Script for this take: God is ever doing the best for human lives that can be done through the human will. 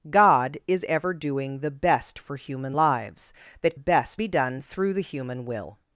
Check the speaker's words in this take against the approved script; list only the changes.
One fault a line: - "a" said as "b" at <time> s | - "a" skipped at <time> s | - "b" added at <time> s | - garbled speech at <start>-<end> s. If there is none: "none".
- "can" said as "best" at 3.7 s